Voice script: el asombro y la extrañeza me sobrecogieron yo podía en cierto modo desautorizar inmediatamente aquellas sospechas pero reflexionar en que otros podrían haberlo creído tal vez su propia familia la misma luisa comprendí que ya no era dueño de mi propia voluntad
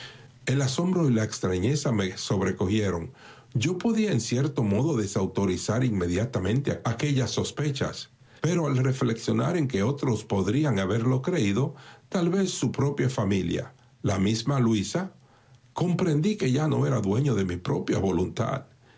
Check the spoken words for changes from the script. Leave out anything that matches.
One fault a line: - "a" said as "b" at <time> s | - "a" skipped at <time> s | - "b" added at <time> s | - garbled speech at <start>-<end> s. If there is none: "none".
- "al" added at 8.7 s